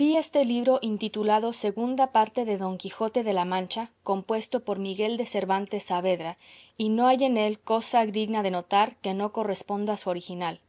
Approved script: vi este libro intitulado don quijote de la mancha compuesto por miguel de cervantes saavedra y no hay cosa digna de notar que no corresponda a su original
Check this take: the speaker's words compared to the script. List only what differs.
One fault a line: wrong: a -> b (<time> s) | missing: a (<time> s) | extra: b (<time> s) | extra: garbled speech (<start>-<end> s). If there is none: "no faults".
extra: segunda parte de (1.5 s)
extra: en él (7.2 s)